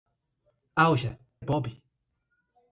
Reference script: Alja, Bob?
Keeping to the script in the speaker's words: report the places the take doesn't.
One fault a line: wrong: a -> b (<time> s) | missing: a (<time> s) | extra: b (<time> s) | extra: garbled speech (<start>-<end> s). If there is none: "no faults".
no faults